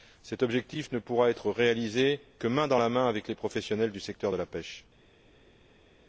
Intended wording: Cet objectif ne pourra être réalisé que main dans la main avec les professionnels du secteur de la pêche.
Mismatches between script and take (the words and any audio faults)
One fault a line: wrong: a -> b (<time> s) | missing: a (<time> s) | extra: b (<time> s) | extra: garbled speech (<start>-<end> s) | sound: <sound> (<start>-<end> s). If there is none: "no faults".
no faults